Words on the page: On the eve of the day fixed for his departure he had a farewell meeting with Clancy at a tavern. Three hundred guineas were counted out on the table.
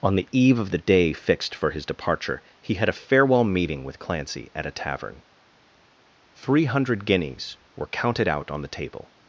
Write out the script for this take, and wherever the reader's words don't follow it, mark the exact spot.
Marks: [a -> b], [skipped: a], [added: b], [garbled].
On the eve of the day fixed for his departure he had a farewell meeting with Clancy at a tavern. Three hundred guineas were counted out on the table.